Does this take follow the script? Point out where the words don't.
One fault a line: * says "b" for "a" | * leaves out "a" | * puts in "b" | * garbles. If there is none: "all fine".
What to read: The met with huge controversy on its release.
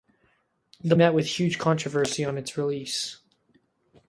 all fine